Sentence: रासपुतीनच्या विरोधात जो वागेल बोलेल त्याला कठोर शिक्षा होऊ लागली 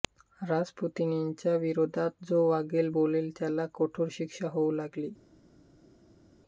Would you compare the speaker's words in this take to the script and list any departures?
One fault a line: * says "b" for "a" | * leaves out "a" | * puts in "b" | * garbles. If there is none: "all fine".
all fine